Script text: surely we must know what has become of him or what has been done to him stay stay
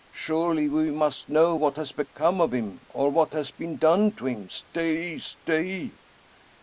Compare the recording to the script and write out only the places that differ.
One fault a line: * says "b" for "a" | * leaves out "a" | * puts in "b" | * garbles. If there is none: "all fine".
all fine